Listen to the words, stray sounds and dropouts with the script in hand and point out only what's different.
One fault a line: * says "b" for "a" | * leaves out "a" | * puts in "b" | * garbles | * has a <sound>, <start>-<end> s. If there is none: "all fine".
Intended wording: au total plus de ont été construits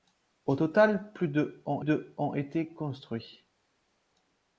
* puts in "de ont"